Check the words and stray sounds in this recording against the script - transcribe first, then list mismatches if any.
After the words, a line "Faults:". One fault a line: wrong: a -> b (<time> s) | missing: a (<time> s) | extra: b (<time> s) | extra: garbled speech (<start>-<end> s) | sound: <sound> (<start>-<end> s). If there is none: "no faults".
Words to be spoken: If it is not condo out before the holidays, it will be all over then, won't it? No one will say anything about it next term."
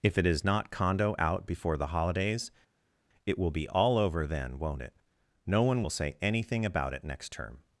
If it is not condo out before the holidays, it will be all over then, won't it? No one will say anything about it next term."
Faults:
no faults